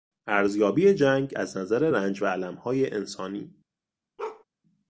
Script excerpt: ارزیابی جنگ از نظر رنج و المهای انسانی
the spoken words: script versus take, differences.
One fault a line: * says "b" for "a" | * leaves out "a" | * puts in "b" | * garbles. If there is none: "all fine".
all fine